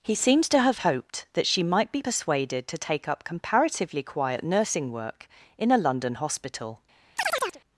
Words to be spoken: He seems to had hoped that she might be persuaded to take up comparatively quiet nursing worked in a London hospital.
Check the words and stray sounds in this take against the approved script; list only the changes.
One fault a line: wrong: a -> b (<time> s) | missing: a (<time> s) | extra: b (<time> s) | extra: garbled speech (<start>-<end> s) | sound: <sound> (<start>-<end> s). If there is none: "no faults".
wrong: had -> have (0.6 s)
wrong: worked -> work (4.9 s)
sound: chirp (7.2-7.6 s)